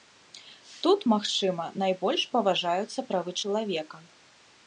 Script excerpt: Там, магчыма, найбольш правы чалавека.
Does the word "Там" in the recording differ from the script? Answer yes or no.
yes